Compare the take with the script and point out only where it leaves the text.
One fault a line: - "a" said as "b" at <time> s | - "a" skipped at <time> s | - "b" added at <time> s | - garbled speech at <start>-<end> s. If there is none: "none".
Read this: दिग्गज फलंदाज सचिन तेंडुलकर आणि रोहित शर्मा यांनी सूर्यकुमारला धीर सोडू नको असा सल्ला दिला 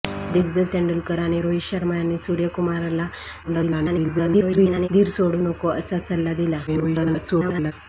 - "फलंदाज सचिन" skipped at 0.7 s
- garbled speech at 3.4-4.9 s
- garbled speech at 6.7-7.7 s